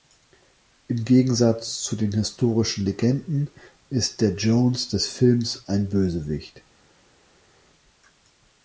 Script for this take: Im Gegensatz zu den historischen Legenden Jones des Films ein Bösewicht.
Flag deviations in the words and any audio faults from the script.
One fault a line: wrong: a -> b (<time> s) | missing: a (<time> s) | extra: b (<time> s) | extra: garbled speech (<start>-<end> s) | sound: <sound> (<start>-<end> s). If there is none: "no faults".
extra: ist der (3.9 s)